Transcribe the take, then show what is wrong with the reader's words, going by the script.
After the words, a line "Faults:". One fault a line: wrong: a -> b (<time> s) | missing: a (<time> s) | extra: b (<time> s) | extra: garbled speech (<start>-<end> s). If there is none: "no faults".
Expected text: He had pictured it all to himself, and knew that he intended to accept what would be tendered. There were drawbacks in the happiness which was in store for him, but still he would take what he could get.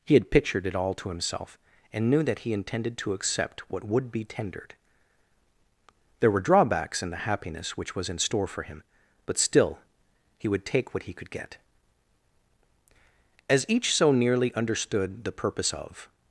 He had pictured it all to himself, and knew that he intended to accept what would be tendered. There were drawbacks in the happiness which was in store for him, but still he would take what he could get. As each so nearly understood the purpose of
Faults:
extra: As each so nearly understood the purpose of (13.5 s)